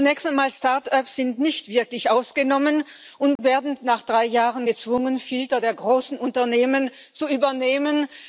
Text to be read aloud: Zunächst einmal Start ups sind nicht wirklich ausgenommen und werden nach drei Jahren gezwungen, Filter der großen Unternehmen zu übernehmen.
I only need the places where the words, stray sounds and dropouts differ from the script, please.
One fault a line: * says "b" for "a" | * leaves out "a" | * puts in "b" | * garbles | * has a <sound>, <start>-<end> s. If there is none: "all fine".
* has a dropout, 3.4-3.4 s